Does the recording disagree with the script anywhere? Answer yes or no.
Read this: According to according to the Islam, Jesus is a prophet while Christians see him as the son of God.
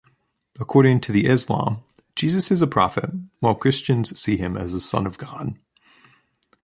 yes